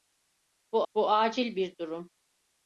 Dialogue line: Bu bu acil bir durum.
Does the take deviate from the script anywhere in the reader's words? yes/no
no